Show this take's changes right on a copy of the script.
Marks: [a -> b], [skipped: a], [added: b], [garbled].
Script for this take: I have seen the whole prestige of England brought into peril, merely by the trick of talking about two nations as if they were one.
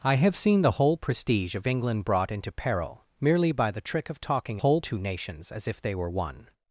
I have seen the whole prestige of England brought into peril, merely by the trick of talking [about -> whole] two nations as if they were one.